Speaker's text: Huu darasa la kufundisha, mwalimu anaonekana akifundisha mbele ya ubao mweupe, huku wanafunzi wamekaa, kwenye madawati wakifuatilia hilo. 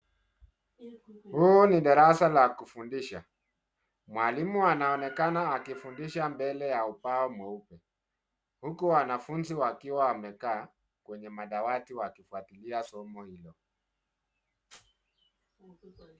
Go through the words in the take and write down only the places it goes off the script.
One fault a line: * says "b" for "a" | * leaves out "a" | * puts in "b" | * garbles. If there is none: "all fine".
* puts in "ni"
* puts in "wakiwa"
* puts in "somo"